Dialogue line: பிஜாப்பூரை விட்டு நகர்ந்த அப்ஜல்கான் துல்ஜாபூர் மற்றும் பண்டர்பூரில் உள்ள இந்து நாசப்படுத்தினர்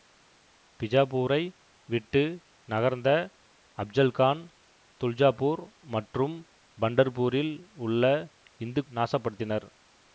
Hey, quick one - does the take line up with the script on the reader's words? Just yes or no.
yes